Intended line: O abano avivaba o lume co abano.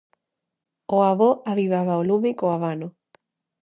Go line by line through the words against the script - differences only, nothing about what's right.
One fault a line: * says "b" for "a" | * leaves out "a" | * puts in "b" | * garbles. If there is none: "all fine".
* says "avó" for "abano"